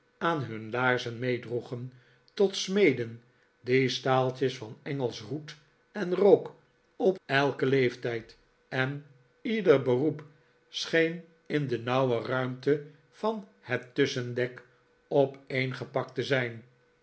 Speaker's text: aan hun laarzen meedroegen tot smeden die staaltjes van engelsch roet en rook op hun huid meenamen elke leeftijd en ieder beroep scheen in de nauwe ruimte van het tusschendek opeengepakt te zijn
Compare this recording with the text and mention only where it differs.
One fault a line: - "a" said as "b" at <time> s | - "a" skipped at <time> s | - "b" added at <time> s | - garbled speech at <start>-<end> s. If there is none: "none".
- "hun huid meenamen" skipped at 7.2 s